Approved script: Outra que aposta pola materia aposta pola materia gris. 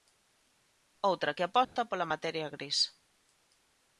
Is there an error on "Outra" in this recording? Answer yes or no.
no